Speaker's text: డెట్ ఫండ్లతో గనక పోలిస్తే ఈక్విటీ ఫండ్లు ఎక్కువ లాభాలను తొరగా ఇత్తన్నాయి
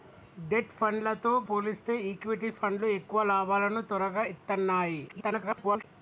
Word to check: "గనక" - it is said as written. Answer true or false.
false